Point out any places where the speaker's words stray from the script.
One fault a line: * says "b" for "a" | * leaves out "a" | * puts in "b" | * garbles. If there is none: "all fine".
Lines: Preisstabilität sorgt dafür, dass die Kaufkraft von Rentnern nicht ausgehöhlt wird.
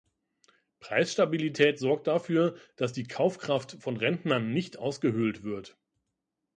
all fine